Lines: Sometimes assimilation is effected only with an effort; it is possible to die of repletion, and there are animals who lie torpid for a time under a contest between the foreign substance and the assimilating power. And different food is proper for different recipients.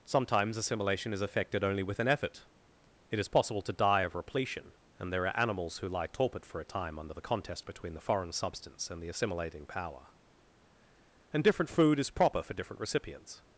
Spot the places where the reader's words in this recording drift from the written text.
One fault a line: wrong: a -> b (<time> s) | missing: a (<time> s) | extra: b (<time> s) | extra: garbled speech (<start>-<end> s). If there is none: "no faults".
wrong: a -> the (7.1 s)